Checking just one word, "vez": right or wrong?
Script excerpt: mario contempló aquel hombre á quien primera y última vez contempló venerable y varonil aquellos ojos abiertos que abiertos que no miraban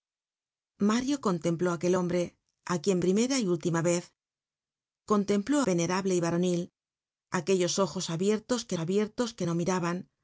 right